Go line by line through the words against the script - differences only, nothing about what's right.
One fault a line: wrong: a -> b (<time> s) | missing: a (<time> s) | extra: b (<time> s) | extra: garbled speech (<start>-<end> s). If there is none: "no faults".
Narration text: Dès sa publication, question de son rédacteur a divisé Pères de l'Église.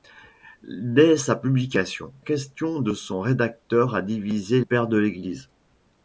no faults